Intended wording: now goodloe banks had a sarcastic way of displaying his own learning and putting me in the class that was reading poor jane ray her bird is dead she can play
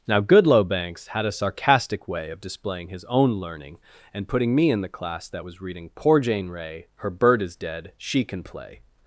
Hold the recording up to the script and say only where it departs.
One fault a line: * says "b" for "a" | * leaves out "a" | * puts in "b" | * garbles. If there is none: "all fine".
all fine